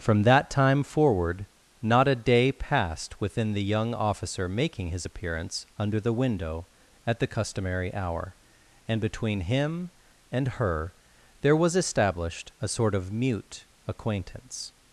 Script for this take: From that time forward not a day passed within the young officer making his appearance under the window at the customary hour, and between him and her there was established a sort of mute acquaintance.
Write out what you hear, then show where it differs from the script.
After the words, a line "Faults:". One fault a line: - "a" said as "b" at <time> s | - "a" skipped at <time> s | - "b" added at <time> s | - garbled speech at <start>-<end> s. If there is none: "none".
From that time forward not a day passed within the young officer making his appearance under the window at the customary hour, and between him and her there was established a sort of mute acquaintance.
Faults:
none